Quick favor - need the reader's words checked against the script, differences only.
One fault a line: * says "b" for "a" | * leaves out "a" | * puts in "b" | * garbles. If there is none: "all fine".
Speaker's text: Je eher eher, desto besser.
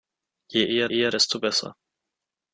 all fine